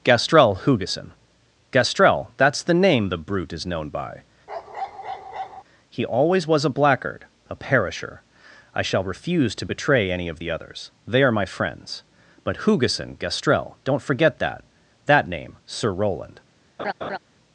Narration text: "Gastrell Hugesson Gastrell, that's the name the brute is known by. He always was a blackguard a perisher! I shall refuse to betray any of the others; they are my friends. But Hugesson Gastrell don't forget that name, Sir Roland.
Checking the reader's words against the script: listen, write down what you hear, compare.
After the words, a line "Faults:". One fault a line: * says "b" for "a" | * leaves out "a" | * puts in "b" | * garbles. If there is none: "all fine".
"Gastrell Hugesson Gastrell, that's the name the brute is known by. He always was a blackguard a perisher! I shall refuse to betray any of the others; they are my friends. But Hugesson Gastrell don't forget that that name, Sir Roland.
Faults:
* puts in "that"